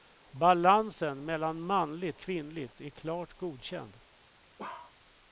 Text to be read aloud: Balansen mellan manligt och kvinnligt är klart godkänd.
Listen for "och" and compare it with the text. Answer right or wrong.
wrong